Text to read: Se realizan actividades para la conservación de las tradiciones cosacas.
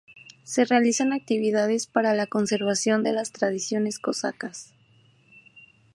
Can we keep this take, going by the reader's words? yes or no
yes